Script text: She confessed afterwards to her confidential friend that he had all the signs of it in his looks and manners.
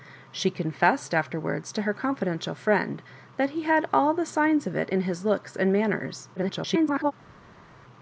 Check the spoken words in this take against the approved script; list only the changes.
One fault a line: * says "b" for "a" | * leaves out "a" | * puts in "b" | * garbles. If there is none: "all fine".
* garbles